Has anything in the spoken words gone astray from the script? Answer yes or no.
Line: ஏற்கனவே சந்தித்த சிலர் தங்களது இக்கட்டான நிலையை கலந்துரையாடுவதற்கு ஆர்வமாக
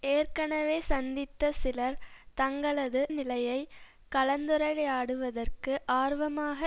yes